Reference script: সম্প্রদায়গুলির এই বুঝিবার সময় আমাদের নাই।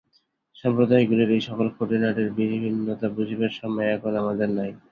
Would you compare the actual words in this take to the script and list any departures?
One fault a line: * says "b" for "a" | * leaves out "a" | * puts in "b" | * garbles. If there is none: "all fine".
* puts in "সকল খুঁটিনাটির বিভিন্নতা"
* puts in "এখন"